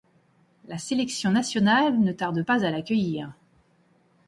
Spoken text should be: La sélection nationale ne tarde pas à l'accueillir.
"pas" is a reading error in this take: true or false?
false